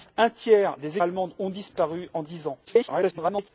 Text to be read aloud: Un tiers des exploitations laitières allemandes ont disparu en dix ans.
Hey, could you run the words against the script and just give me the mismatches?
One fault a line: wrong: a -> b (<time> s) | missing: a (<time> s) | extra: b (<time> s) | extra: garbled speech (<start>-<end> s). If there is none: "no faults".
missing: exploitations laitières (1.0 s)
extra: garbled speech (2.6-3.5 s)